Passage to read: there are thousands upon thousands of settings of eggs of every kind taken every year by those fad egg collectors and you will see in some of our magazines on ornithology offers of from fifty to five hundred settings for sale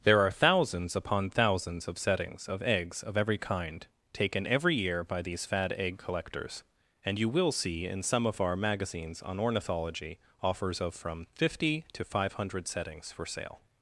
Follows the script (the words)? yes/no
no